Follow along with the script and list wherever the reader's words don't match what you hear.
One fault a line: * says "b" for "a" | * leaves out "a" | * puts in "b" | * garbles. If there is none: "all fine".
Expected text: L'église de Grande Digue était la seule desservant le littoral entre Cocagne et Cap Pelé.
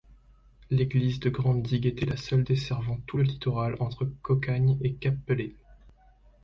* puts in "tout"